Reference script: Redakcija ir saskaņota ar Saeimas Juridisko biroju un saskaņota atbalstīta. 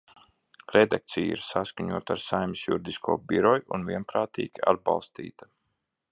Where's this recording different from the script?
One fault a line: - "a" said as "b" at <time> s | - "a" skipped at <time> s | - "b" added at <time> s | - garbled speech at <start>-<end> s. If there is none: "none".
- "saskaņota" said as "vienprātīgi" at 3.9 s